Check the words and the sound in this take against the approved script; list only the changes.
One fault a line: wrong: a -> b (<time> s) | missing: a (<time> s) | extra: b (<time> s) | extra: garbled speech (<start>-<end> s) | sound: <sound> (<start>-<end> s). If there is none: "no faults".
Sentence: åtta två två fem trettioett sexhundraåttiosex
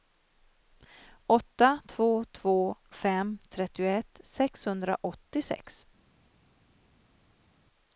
no faults